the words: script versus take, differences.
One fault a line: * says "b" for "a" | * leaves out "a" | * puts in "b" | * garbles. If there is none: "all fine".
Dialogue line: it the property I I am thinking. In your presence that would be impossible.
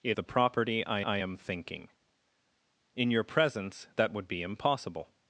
all fine